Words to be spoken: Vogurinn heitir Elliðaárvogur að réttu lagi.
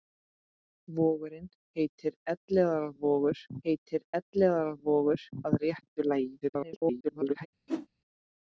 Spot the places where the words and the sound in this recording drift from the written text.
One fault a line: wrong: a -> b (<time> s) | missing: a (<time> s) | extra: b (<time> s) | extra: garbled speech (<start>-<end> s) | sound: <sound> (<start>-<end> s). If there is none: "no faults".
extra: heitir Elliðaárvogur (3.7 s)
extra: garbled speech (6.4-7.5 s)
sound: whoosh (7.7-7.9 s)